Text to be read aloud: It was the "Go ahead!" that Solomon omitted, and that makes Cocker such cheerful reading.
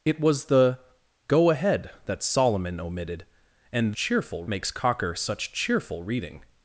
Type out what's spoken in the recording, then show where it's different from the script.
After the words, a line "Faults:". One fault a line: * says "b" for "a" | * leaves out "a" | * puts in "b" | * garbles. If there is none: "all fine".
It was the "Go ahead!" that Solomon omitted, and cheerful makes Cocker such cheerful reading.
Faults:
* says "cheerful" for "that"